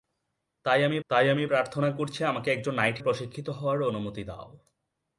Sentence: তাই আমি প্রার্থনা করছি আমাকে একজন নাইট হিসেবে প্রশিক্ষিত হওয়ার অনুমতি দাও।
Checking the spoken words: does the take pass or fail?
fail